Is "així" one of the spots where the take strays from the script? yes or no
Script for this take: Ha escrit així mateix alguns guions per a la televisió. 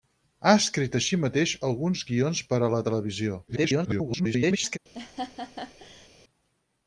no